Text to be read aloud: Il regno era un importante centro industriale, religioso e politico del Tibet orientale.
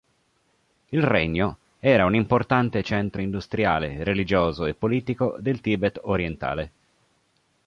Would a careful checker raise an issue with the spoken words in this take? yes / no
no